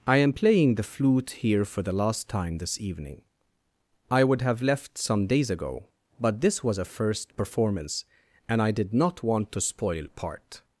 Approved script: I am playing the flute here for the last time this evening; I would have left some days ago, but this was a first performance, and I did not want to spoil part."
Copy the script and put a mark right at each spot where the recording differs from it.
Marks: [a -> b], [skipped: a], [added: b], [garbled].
I am playing the flute here for the last time this evening; I would have left some days ago, but this was a first performance, and I did not want to spoil part."